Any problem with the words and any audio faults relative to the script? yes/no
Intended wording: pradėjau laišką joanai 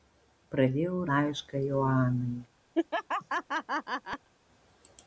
yes